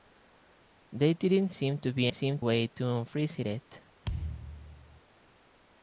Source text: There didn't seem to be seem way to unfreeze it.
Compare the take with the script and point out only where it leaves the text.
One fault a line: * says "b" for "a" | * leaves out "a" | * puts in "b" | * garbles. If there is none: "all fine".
all fine